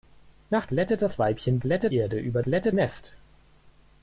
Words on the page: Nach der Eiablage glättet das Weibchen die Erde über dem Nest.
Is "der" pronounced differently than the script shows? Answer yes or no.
yes